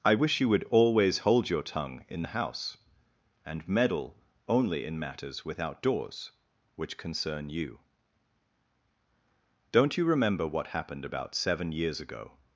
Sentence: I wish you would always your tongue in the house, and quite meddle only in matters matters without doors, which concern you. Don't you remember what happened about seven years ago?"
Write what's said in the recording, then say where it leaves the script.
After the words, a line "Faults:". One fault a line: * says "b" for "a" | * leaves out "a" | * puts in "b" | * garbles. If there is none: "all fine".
I wish you would always hold your tongue in the house, and meddle only in matters without doors, which concern you. Don't you remember what happened about seven years ago?"
Faults:
* puts in "hold"
* leaves out "quite"
* leaves out "matters"